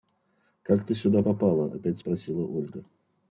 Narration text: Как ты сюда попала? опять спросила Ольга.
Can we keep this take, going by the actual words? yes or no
yes